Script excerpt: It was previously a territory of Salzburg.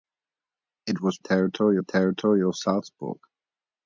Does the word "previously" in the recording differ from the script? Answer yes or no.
yes